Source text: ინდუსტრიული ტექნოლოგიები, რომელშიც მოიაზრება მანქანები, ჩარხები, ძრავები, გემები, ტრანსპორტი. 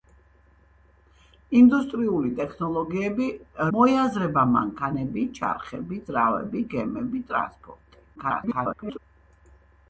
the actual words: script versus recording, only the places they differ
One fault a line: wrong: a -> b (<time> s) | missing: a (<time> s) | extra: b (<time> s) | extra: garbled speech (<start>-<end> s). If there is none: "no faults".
missing: რომელშიც (3.3 s)
extra: garbled speech (8.2-9.0 s)